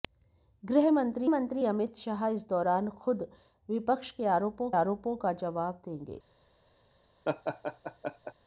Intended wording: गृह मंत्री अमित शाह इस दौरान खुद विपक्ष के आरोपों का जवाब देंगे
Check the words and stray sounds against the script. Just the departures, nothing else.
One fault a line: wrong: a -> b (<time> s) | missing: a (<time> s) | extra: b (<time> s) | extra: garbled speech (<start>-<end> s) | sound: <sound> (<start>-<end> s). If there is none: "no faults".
extra: मंत्री (1.3 s)
extra: आरोपों (4.8 s)
sound: laugh (7.2-8.3 s)